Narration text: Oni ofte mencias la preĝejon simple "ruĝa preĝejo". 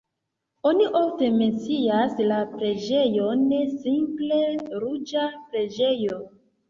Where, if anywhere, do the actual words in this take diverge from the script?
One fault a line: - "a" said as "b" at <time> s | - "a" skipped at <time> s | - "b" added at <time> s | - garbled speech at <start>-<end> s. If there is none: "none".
none